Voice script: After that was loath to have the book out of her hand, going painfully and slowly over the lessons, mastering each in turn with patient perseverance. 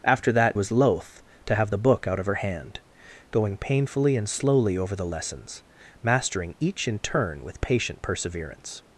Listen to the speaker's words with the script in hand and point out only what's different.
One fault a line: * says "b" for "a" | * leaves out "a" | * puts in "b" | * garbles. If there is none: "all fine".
all fine